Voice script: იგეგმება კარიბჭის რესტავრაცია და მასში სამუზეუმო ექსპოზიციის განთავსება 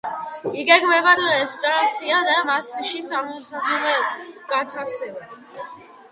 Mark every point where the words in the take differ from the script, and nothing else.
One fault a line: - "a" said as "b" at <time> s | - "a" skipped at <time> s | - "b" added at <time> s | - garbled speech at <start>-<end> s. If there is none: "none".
- "კარიბჭის" skipped at 1.1 s
- "სამუზეუმო ექსპოზიციის" skipped at 3.0 s